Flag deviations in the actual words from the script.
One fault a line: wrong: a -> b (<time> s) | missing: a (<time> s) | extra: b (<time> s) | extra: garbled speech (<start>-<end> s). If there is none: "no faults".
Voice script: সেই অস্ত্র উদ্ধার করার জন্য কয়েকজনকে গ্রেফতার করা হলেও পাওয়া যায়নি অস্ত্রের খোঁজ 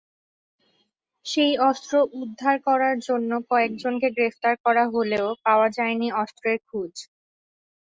no faults